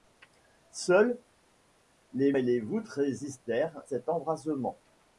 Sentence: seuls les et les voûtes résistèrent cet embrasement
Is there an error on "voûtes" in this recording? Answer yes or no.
no